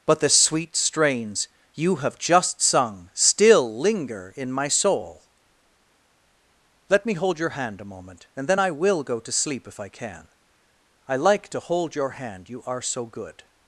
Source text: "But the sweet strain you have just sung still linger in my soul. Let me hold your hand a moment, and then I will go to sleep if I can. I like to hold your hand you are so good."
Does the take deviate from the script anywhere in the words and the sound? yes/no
yes